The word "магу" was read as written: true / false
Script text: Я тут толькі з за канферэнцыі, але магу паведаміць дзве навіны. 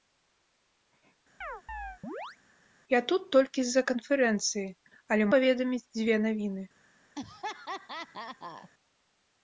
false